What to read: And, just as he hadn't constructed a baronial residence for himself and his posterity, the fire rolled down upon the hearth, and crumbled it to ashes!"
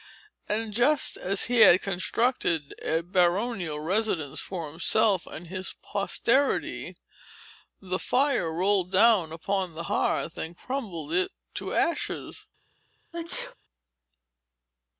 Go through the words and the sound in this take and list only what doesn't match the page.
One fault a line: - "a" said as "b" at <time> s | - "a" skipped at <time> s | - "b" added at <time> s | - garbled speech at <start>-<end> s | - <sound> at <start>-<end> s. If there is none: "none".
- "hadn't" said as "had" at 1.6 s
- sneeze at 13.1-13.5 s